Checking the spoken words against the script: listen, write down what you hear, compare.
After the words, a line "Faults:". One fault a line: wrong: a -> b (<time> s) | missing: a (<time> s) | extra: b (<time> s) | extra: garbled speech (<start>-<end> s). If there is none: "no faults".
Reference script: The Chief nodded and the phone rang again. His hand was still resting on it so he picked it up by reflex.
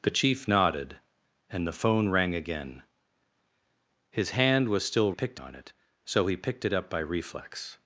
The Chief nodded and the phone rang again. His hand was still picked on it so he picked it up by reflex.
Faults:
wrong: resting -> picked (5.1 s)